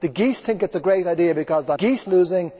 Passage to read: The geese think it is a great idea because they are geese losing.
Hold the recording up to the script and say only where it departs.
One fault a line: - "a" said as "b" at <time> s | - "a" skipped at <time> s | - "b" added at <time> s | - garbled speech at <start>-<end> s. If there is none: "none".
none